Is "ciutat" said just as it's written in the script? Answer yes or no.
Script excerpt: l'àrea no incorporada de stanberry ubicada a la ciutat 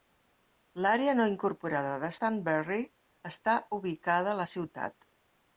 yes